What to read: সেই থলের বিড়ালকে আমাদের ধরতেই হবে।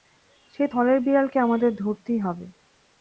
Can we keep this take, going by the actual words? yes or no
yes